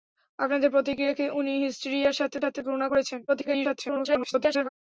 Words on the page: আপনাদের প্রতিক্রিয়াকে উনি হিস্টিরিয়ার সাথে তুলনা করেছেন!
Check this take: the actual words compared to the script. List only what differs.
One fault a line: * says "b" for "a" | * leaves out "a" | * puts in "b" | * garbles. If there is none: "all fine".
* puts in "সাথে"
* garbles